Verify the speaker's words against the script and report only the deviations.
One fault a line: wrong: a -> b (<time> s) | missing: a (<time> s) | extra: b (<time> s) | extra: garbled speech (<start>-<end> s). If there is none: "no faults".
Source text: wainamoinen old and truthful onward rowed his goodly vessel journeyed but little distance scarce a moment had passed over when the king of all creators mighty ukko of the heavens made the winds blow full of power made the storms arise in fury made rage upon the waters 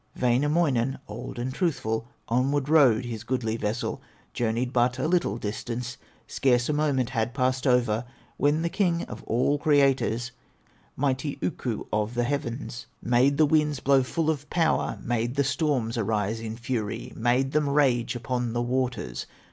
extra: a (5.0 s)
extra: them (17.5 s)